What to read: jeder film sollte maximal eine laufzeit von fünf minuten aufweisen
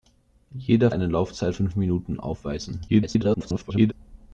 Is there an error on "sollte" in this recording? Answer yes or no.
yes